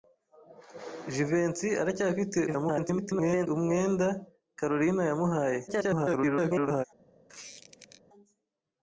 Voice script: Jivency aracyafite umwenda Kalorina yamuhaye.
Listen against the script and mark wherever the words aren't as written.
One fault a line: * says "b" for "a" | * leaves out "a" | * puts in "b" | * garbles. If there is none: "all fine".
* garbles
* garbles